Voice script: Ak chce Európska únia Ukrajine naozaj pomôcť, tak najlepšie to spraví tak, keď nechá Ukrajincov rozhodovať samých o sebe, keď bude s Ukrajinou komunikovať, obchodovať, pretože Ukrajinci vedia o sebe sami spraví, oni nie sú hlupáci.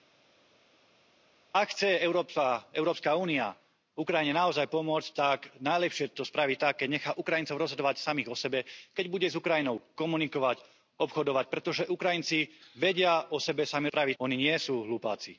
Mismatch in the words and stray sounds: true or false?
false